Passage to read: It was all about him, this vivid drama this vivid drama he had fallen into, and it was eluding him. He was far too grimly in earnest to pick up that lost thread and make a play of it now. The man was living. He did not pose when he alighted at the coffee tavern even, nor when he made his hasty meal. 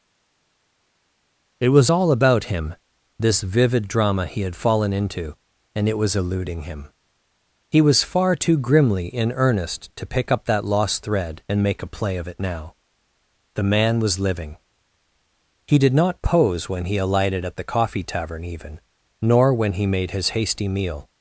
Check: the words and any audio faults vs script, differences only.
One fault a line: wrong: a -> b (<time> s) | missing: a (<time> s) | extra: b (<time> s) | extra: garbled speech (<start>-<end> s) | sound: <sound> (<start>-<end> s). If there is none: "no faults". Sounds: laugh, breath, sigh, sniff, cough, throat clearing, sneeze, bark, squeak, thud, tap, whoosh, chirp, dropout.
missing: this vivid drama (4.3 s)